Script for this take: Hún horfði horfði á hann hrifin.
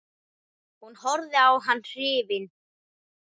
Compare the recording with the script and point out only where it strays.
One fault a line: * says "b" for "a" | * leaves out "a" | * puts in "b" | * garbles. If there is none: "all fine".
* leaves out "horfði"